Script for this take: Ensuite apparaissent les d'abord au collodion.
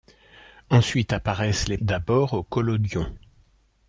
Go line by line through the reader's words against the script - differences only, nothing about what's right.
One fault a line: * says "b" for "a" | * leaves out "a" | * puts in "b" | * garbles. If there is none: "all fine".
all fine